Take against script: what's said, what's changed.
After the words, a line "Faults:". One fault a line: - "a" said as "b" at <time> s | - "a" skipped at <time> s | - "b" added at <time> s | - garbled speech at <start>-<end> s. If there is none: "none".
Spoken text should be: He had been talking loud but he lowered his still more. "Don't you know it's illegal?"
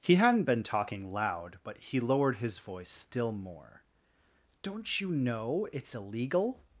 He hadn't been talking loud but he lowered his voice still more. "Don't you know it's illegal?"
Faults:
- "had" said as "hadn't" at 0.1 s
- "voice" added at 2.6 s